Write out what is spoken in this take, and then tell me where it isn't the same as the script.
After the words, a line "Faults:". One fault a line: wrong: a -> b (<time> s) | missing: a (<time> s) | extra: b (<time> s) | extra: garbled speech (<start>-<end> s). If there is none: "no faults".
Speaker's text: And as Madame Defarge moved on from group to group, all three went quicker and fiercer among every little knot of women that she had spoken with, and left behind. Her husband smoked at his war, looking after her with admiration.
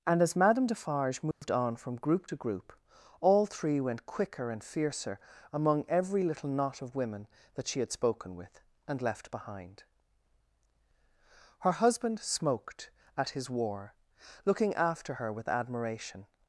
And as Madame Defarge moved on from group to group, all three went quicker and fiercer among every little knot of women that she had spoken with, and left behind. Her husband smoked at his war, looking after her with admiration.
Faults:
no faults